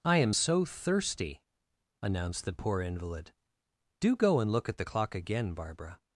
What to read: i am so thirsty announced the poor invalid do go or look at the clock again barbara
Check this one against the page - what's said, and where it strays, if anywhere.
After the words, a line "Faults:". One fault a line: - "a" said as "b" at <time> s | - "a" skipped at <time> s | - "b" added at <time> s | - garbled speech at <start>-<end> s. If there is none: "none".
i am so thirsty announced the poor invalid do go and look at the clock again barbara
Faults:
- "or" said as "and" at 4.4 s